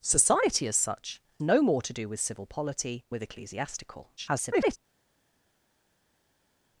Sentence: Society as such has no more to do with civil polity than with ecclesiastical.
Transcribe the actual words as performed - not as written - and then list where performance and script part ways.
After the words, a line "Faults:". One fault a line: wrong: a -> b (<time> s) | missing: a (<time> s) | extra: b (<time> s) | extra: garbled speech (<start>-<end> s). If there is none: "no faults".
Society as such no more to do with civil polity with ecclesiastical. [garbled]
Faults:
missing: has (1.2 s)
missing: than (3.0 s)
extra: garbled speech (4.2-4.8 s)